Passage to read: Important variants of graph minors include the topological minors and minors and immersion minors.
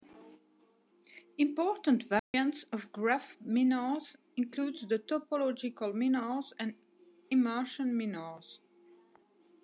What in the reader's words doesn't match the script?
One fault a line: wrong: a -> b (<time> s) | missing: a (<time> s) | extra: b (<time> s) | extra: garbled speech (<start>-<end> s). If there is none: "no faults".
missing: minors and (6.7 s)